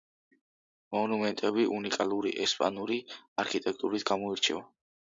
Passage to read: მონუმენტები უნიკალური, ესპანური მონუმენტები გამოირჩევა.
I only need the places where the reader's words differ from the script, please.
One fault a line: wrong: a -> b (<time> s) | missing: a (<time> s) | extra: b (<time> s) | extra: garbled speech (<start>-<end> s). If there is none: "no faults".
wrong: მონუმენტები -> არქიტექტურით (3.5 s)